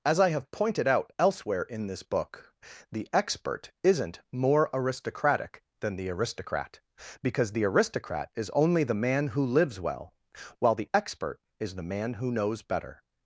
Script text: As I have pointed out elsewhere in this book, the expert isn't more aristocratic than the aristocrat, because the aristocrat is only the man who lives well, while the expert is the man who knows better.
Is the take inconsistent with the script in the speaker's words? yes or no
no